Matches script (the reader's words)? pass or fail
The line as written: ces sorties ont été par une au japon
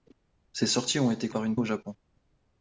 pass